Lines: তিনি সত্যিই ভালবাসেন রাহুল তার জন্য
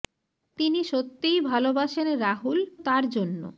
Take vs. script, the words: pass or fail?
pass